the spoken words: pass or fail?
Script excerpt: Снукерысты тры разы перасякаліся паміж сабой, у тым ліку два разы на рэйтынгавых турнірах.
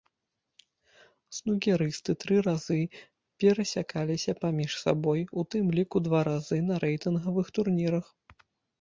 pass